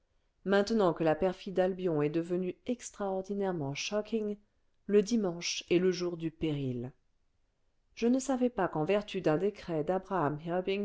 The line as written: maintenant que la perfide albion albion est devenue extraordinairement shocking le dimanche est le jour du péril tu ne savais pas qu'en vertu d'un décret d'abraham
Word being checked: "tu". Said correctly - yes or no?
no